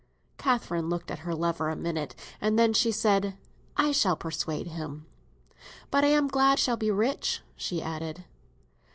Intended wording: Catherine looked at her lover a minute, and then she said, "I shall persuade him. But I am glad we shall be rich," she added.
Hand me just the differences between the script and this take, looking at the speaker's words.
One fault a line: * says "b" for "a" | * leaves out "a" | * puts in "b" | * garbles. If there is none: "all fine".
* leaves out "we"